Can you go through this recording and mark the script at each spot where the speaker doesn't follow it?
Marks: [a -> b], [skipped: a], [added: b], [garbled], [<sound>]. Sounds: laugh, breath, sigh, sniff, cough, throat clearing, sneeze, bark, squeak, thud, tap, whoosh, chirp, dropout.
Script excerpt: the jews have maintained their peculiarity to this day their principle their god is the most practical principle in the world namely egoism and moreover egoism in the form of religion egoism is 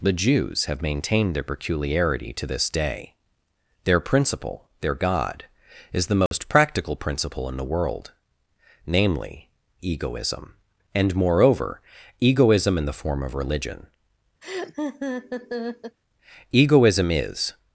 the jews have maintained their peculiarity to this day their principle their god is the most [dropout] practical principle in the world namely egoism and moreover egoism in the form of religion [laugh] egoism is